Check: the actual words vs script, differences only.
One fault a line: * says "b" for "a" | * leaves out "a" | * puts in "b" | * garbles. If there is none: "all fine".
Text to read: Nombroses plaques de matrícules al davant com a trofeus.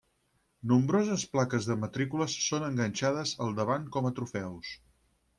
* puts in "són enganxades"